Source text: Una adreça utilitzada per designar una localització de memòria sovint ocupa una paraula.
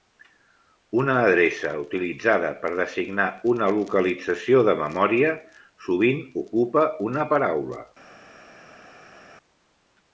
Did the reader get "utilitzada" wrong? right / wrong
right